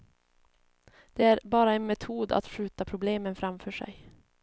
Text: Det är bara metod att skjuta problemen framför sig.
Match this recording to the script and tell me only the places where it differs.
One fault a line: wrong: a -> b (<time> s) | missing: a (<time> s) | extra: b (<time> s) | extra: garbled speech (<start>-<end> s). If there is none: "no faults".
extra: en (1.7 s)